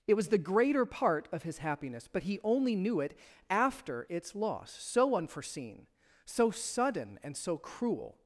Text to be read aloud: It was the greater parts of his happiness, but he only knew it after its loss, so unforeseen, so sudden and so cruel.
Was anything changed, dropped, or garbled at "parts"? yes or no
yes